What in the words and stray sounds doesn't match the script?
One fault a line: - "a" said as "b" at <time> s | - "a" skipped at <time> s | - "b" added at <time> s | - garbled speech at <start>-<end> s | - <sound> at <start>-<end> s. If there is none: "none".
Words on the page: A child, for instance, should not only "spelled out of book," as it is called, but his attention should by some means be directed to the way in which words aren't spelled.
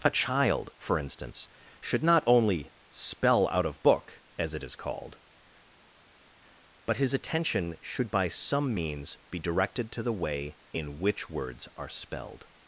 - "spelled" said as "spell" at 2.9 s
- "aren't" said as "are" at 11.7 s